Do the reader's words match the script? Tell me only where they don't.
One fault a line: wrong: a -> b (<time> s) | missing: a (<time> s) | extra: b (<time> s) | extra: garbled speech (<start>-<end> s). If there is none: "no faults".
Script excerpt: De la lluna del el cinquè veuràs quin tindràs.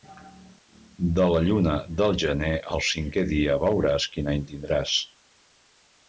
extra: gener (2.2 s)
extra: dia (3.4 s)
extra: any (4.3 s)